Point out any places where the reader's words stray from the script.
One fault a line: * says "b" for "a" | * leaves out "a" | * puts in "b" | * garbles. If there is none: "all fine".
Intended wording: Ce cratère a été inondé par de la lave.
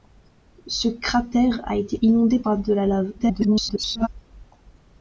* garbles